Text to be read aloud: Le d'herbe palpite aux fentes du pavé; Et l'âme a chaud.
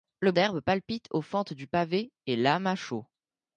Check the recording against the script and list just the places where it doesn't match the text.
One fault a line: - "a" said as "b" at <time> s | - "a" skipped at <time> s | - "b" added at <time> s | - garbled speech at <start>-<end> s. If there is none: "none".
none